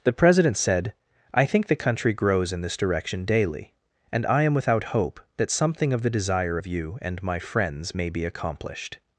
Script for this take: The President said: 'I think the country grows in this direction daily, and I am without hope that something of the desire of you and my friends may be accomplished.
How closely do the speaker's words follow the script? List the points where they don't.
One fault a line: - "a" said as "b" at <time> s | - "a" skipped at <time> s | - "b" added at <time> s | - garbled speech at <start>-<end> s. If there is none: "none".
none